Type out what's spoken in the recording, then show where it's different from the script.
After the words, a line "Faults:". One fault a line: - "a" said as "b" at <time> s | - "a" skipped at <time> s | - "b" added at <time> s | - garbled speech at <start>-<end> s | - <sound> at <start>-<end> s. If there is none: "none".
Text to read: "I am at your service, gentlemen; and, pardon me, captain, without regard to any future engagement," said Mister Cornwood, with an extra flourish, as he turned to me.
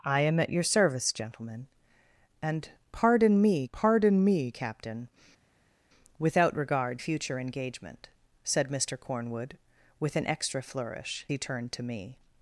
"I am at your service, gentlemen; and, pardon me pardon me, captain, without regard future engagement," said Mister Cornwood, with an extra flourish, he turned to me.
Faults:
- "pardon me" added at 3.7 s
- "to any" skipped at 7.0 s
- "as" skipped at 11.3 s